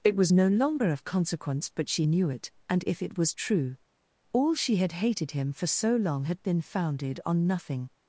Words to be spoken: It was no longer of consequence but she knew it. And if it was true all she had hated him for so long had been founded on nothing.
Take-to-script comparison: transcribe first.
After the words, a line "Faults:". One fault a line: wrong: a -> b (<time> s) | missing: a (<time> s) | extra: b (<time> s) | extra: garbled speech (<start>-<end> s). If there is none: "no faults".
It was no longer of consequence but she knew it. And if it was true all she had hated him for so long had been founded on nothing.
Faults:
no faults